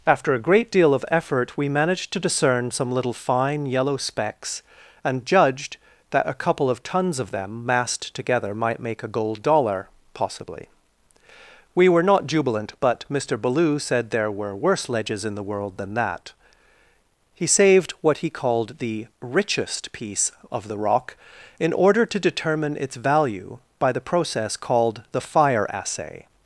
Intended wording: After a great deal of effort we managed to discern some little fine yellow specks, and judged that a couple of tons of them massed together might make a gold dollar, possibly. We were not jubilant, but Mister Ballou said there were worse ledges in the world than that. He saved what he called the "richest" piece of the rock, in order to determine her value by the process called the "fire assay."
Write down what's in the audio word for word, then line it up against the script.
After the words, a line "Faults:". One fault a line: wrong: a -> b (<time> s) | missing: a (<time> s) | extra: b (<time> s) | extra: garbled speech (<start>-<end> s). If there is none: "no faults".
After a great deal of effort we managed to discern some little fine yellow specks, and judged that a couple of tons of them massed together might make a gold dollar, possibly. We were not jubilant, but Mister Ballou said there were worse ledges in the world than that. He saved what he called the "richest" piece of the rock, in order to determine its value by the process called the "fire assay."
Faults:
wrong: her -> its (22.8 s)